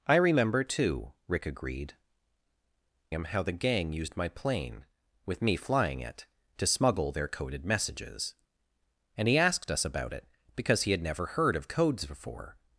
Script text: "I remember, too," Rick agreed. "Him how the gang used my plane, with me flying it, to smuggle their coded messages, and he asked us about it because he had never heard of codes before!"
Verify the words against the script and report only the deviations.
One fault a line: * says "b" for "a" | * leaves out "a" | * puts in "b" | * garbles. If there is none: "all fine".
all fine